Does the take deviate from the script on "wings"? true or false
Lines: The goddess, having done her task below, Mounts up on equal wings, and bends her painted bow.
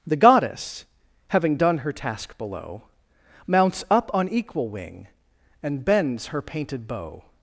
true